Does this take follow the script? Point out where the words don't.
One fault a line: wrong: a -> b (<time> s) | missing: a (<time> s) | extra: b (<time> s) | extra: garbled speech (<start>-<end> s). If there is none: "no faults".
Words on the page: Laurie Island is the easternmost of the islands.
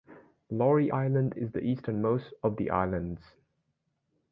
no faults